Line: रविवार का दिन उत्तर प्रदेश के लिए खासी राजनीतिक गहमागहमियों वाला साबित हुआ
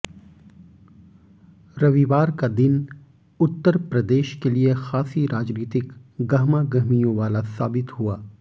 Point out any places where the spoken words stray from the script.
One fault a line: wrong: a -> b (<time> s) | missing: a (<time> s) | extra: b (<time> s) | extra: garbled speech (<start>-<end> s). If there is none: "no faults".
no faults